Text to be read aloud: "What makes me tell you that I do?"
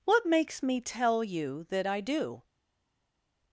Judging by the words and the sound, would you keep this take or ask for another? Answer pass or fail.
pass